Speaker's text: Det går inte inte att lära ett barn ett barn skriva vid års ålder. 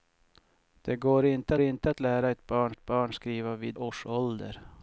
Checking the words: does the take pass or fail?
pass